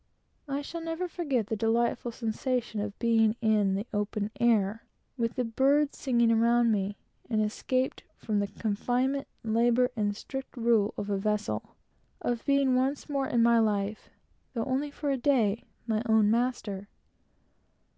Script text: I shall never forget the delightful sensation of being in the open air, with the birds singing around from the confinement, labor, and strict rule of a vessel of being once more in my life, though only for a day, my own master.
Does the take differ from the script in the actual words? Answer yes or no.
yes